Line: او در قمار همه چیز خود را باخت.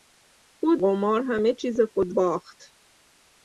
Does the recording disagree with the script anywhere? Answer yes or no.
yes